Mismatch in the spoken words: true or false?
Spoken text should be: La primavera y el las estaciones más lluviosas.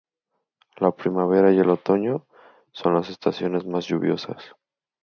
true